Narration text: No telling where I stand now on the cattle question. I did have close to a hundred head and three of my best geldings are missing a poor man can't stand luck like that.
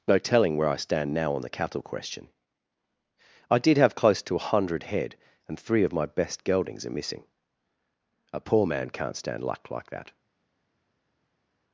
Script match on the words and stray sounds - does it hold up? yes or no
yes